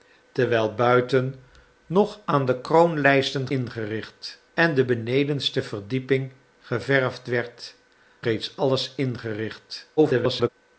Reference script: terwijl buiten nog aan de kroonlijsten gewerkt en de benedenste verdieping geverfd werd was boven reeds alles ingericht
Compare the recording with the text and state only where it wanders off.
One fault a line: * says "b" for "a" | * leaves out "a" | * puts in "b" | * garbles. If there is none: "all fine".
* says "ingericht" for "gewerkt"
* leaves out "was boven"
* garbles